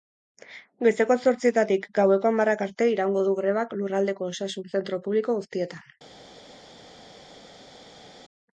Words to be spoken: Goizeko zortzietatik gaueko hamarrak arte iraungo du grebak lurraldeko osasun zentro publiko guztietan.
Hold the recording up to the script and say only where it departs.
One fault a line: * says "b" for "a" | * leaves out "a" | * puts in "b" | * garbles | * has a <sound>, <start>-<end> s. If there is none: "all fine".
all fine